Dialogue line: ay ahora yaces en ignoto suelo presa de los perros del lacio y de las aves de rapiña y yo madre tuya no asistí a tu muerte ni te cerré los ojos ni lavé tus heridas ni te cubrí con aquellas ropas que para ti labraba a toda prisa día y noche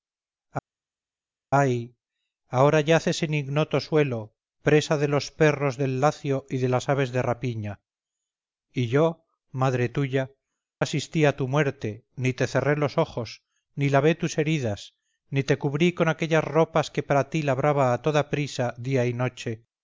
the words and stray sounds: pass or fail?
fail